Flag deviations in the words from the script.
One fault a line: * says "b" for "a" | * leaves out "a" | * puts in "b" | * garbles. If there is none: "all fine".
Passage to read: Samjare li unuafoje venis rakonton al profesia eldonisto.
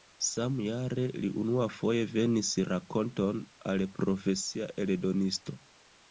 all fine